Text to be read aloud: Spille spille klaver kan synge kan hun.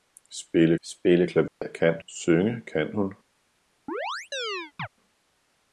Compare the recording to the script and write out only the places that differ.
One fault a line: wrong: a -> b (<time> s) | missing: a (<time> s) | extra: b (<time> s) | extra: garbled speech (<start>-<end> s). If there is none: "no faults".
no faults